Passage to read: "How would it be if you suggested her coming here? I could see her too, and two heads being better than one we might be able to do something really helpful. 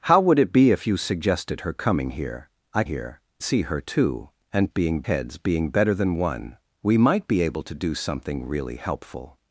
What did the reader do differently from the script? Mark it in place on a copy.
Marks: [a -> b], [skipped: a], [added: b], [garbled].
"How would it be if you suggested her coming here? I [could -> here] see her too, and [two -> being] heads being better than one we might be able to do something really helpful.